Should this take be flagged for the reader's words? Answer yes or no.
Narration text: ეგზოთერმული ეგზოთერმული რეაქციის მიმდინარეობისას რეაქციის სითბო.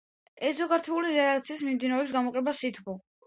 yes